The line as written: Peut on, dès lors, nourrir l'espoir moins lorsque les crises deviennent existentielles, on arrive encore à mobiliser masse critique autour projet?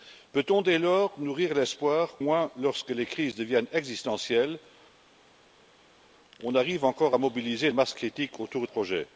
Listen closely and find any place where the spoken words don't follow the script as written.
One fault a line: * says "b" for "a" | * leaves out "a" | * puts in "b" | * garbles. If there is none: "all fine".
all fine